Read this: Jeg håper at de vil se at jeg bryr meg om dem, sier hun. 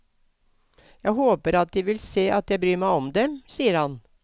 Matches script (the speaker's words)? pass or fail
fail